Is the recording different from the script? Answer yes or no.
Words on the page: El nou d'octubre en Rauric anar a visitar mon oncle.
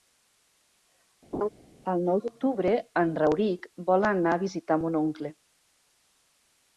yes